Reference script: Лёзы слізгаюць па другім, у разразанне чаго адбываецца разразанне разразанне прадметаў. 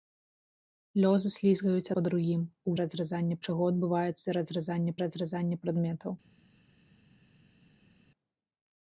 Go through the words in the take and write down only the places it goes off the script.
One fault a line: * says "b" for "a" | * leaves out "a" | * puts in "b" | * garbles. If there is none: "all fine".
all fine